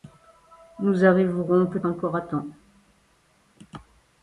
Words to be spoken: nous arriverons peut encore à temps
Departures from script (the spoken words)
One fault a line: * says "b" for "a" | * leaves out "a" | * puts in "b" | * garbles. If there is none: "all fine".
all fine